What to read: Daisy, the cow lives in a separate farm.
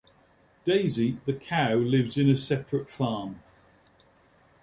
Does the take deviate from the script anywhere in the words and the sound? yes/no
no